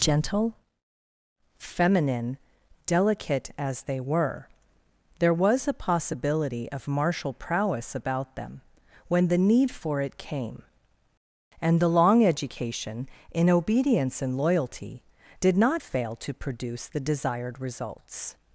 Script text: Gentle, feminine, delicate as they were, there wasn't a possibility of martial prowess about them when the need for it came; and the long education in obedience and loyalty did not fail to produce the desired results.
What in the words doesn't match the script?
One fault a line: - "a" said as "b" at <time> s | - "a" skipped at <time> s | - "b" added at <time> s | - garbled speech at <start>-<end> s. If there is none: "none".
- "wasn't" said as "was" at 5.3 s